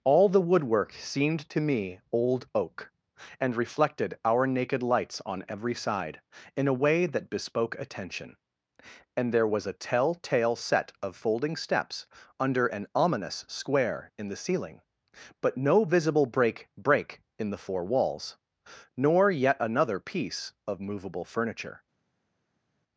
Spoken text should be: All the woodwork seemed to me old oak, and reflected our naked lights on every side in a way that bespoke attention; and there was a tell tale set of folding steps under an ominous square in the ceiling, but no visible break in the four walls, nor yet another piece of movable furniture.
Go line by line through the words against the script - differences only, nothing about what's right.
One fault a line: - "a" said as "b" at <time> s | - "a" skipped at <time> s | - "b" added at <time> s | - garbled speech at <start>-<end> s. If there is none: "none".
- "break" added at 16.8 s